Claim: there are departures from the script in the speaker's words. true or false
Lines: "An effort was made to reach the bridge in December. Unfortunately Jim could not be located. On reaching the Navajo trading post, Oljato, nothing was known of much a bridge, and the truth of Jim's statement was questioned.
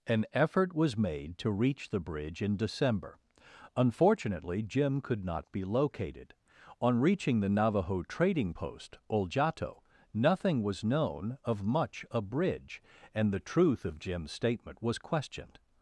false